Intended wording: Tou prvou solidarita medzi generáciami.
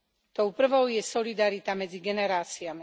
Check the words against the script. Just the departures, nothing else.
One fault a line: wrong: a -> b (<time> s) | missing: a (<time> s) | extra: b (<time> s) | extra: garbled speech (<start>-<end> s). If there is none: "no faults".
extra: je (0.9 s)